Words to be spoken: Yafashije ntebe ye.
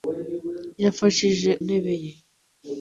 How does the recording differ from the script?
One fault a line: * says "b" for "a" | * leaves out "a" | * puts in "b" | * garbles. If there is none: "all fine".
all fine